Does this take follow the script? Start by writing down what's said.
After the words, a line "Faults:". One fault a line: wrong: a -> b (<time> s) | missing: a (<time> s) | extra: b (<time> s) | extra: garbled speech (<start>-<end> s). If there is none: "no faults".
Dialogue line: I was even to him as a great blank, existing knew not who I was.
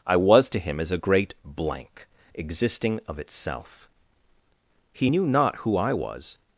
I was to him as a great blank, existing of itself. He knew not who I was.
Faults:
missing: even (0.5 s)
extra: of itself He (3.1 s)